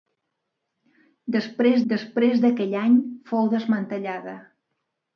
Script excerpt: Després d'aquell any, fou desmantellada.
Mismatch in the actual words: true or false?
true